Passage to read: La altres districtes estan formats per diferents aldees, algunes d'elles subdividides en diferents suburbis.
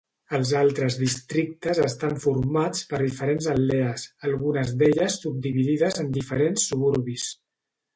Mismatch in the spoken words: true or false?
true